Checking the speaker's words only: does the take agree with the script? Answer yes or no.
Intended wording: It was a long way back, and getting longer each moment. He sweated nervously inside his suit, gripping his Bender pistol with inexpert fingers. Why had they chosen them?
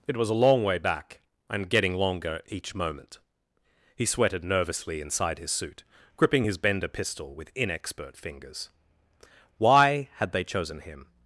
no